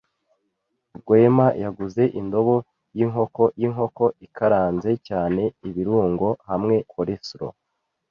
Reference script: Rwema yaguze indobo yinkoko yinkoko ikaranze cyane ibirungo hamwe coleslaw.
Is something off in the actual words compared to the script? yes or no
no